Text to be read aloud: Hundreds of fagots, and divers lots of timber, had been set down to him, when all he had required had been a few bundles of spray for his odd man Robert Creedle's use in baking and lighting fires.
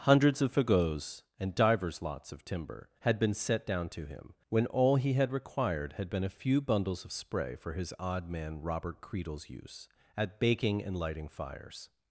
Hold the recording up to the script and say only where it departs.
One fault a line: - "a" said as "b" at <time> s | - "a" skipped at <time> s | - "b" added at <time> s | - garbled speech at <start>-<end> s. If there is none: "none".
- "in" said as "at" at 10.2 s